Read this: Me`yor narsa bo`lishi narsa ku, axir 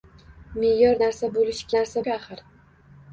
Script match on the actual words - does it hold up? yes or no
yes